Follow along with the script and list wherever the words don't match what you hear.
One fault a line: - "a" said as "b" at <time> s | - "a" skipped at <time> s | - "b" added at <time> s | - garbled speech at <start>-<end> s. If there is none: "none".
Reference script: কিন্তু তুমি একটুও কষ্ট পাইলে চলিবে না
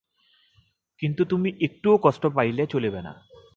none